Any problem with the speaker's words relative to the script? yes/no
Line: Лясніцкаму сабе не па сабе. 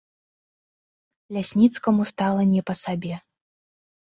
yes